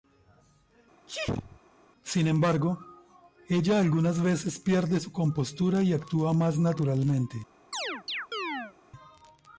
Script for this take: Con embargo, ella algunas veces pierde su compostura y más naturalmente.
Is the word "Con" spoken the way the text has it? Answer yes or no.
no